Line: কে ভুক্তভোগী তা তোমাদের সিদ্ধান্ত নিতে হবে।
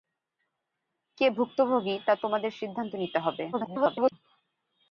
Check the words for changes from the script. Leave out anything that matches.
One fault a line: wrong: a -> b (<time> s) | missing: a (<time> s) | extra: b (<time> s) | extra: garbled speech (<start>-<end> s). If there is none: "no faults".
extra: garbled speech (3.5-4.1 s)